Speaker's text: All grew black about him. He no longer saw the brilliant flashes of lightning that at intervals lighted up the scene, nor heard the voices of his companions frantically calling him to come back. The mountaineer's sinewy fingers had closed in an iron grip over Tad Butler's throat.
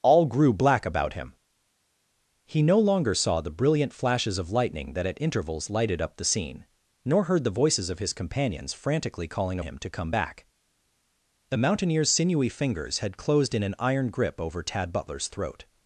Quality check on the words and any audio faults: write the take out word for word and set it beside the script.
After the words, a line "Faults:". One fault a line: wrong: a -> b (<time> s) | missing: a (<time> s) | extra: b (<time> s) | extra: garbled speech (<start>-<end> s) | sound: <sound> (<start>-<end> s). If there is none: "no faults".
All grew black about him. He no longer saw the brilliant flashes of lightning that at intervals lighted up the scene, nor heard the voices of his companions frantically calling him to come back. The mountaineer's sinewy fingers had closed in an iron grip over Tad Butler's throat.
Faults:
no faults